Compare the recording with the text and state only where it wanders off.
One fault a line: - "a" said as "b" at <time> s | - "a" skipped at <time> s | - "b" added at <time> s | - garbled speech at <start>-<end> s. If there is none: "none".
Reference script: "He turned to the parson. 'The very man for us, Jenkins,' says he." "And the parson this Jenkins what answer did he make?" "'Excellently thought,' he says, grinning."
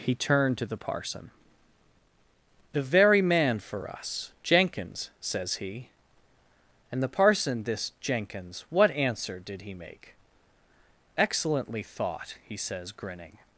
none